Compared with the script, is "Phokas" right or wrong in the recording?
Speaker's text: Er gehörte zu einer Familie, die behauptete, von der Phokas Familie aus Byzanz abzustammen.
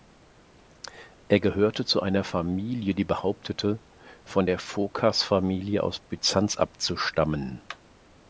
right